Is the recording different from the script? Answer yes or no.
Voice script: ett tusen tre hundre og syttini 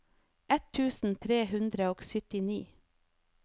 no